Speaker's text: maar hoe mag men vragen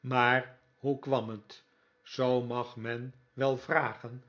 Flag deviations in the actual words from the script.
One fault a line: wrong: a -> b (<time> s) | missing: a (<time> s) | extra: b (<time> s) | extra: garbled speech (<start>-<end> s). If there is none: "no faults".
extra: kwam het zoo (1.0 s)
extra: wel (3.3 s)